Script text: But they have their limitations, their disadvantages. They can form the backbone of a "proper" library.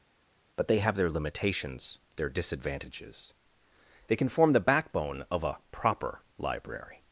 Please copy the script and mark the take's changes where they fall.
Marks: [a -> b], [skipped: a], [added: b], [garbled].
But they have their limitations, their disadvantages. They can form the backbone of a "proper" library.